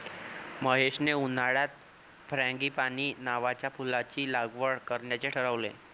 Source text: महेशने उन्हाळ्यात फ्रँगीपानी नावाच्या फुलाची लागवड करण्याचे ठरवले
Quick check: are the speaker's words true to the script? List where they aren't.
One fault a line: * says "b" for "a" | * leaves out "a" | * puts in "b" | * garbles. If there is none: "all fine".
all fine